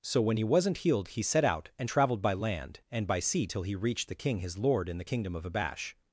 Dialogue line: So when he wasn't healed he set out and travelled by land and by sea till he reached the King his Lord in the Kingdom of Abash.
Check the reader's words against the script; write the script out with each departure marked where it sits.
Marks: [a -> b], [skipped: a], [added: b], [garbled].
So when he wasn't healed he set out and travelled by land and by sea till he reached the King his Lord in the Kingdom of Abash.